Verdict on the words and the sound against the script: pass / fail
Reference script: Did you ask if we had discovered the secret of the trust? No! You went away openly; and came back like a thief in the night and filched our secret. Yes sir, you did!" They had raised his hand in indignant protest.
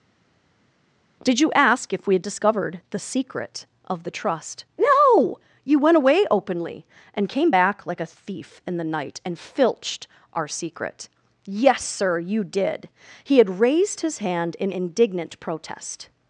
fail